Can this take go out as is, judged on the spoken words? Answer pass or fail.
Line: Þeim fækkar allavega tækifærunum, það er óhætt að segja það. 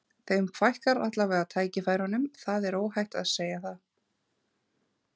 pass